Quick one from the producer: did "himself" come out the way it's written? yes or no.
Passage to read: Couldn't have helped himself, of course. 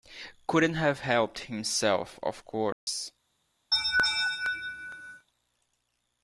yes